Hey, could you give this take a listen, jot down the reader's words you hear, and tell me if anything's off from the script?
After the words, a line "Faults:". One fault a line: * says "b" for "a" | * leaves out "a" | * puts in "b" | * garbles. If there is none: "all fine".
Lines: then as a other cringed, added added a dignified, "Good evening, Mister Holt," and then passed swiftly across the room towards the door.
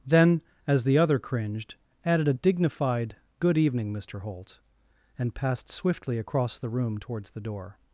then as the other cringed, added a dignified, "Good evening, Mister Holt," and passed swiftly across the room towards the door.
Faults:
* says "the" for "a"
* leaves out "added"
* leaves out "then"